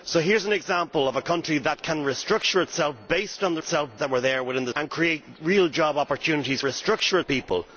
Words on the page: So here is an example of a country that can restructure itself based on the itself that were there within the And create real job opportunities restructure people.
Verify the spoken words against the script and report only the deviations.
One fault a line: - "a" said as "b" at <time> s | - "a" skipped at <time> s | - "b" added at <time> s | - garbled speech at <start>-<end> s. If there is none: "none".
none